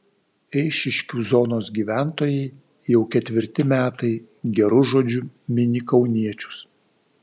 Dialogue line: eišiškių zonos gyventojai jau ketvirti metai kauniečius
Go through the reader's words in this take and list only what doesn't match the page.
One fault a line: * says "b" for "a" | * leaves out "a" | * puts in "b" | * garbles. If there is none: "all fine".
* puts in "geru žodžiu mini"